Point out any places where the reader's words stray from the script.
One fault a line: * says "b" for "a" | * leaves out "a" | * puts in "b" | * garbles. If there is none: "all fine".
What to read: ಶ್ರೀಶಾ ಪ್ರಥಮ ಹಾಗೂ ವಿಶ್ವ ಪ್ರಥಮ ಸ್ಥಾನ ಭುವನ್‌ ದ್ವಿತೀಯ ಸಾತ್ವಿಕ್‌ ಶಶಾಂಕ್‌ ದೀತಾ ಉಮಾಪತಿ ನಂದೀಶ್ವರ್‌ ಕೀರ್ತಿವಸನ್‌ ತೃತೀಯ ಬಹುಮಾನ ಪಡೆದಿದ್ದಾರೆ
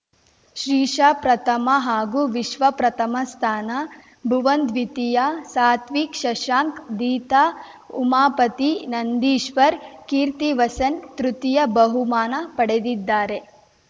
all fine